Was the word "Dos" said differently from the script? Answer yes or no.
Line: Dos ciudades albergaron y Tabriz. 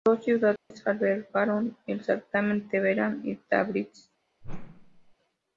no